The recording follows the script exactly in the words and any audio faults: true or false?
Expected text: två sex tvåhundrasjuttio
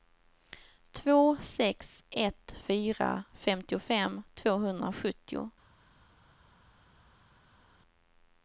false